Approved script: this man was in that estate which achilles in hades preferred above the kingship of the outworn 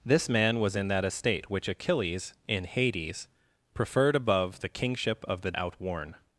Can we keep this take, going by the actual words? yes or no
yes